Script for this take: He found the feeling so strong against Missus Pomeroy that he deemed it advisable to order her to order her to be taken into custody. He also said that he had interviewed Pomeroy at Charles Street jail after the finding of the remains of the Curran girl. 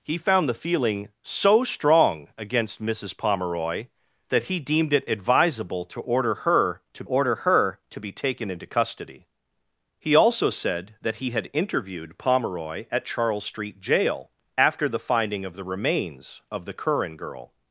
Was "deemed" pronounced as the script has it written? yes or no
yes